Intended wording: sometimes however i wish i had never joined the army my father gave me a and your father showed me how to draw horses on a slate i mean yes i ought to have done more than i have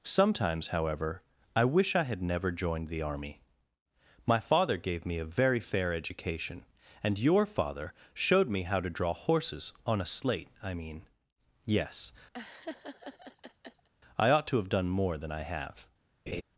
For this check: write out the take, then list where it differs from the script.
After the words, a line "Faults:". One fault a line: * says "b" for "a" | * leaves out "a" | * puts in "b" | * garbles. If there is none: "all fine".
sometimes however i wish i had never joined the army my father gave me a very fair education and your father showed me how to draw horses on a slate i mean yes i ought to have done more than i have
Faults:
* puts in "very fair education"